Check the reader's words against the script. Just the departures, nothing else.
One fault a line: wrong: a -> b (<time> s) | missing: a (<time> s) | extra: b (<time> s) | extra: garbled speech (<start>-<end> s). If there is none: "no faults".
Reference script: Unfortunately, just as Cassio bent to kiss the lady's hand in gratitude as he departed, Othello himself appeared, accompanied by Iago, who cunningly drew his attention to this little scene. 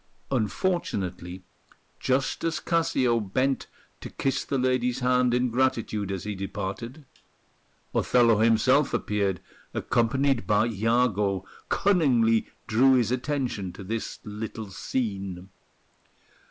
missing: who (11.4 s)